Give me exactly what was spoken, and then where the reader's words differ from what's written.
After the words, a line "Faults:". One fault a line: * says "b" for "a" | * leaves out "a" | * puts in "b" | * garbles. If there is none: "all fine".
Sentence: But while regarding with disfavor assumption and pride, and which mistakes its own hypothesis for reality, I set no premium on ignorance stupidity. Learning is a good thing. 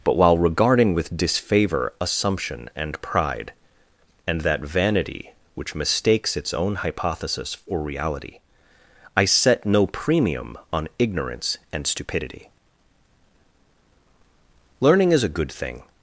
But while regarding with disfavor assumption and pride, and that vanity which mistakes its own hypothesis for reality, I set no premium on ignorance and stupidity. Learning is a good thing.
Faults:
* puts in "that vanity"
* puts in "and"